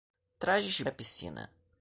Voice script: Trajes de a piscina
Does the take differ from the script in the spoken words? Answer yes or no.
no